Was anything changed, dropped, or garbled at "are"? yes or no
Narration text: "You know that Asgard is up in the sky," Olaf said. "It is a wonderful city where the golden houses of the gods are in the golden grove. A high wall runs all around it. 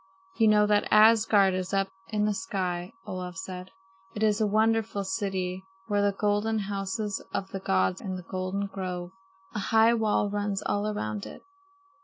yes